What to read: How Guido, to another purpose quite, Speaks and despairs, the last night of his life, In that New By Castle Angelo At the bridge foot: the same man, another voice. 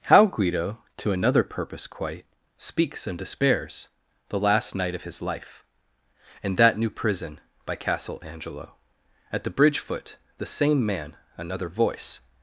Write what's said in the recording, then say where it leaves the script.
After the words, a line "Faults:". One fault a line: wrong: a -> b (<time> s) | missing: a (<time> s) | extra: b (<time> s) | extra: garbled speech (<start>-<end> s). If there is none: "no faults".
How Guido, to another purpose quite, Speaks and despairs, the last night of his life, In that New Prison by Castle Angelo At the bridge foot: the same man, another voice.
Faults:
extra: Prison (6.9 s)